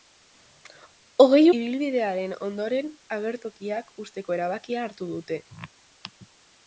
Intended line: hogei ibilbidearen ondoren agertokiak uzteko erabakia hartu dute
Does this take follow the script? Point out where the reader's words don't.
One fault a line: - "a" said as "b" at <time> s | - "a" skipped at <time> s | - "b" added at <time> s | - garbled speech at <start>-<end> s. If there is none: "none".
none